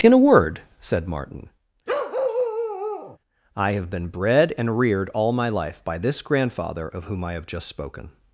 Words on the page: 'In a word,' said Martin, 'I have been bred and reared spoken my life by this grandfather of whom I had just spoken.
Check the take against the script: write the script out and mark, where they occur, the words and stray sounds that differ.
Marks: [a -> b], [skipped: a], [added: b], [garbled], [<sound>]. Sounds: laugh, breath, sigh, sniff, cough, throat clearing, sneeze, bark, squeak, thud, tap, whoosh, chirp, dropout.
'In a word,' said Martin, [bark] 'I have been bred and reared [spoken -> all] my life by this grandfather of whom I [had -> have] just spoken.